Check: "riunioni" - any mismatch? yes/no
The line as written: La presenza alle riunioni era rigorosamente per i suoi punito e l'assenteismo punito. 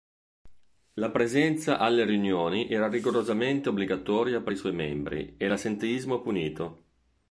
no